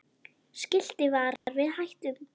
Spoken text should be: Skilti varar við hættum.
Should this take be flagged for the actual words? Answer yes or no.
no